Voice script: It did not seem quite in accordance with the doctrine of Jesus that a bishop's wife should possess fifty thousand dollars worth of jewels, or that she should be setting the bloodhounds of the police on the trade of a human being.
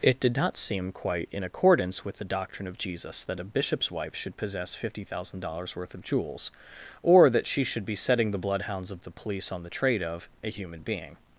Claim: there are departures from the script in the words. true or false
false